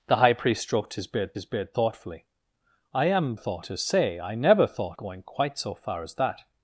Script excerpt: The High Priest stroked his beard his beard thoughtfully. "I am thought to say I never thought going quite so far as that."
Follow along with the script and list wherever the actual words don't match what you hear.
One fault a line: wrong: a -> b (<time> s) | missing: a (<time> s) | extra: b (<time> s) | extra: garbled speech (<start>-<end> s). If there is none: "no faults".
no faults